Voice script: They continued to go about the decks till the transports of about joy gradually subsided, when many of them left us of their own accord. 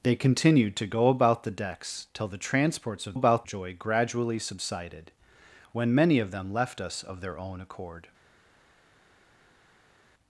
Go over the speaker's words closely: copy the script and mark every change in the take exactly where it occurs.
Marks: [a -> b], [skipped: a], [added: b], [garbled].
They continued to go about the decks till the transports of about joy gradually subsided, when many of them left us of their own accord.